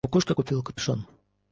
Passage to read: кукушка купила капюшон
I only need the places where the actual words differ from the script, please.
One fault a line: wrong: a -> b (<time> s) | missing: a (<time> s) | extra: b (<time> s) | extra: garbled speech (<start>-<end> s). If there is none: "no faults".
no faults